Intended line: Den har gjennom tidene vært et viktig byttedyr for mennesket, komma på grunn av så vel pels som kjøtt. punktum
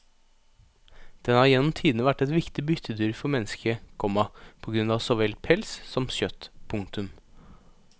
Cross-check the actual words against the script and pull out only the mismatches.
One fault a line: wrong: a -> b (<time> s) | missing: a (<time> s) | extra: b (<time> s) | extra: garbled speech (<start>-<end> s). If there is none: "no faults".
no faults